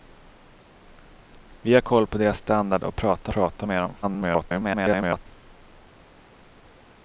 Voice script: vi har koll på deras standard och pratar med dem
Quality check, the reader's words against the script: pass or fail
fail